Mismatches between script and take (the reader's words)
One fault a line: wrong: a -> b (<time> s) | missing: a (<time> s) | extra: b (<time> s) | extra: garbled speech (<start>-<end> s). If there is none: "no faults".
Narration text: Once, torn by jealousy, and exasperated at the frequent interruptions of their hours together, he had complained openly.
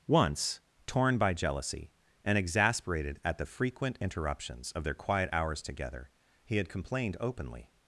extra: quiet (4.9 s)